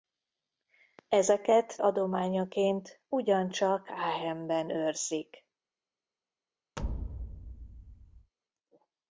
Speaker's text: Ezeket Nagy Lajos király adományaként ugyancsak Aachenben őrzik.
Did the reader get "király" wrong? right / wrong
wrong